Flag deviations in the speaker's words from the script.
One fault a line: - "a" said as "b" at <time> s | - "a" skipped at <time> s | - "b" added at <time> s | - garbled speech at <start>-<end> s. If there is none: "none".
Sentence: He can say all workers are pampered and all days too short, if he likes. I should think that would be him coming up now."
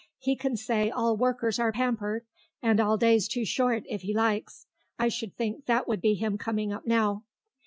none